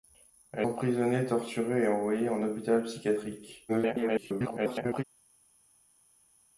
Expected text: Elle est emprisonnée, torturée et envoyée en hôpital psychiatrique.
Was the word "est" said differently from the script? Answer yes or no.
yes